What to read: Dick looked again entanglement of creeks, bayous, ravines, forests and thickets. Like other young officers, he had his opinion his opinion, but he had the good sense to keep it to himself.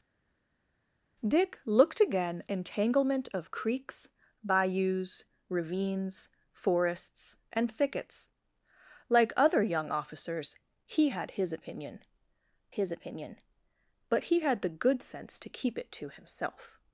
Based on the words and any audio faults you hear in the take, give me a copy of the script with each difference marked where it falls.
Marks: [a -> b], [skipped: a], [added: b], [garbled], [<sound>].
Dick looked again entanglement of creeks, bayous, ravines, forests and thickets. Like other young officers, he had his opinion his opinion, but he had the good sense to keep it to himself.